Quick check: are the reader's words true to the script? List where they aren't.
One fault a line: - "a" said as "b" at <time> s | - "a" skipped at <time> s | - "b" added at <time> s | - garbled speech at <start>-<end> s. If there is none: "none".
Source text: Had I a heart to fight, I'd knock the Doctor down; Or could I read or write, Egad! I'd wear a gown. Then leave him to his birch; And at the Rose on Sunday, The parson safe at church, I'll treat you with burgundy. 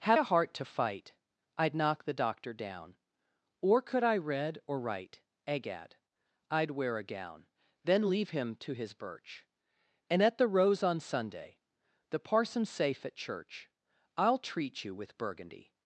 - "I" skipped at 0.2 s